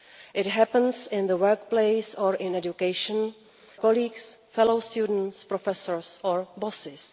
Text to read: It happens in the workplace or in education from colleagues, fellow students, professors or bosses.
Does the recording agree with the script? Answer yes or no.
no